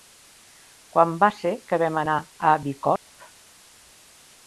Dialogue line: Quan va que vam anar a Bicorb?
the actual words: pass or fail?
fail